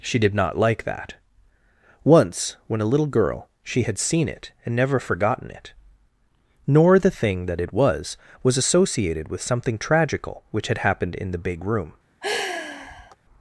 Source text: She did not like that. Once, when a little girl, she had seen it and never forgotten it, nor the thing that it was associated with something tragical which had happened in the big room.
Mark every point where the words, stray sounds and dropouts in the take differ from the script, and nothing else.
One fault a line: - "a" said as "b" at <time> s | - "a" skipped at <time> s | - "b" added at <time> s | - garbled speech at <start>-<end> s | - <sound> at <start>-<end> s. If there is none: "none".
- "was" added at 8.4 s
- sigh at 12.2-13.2 s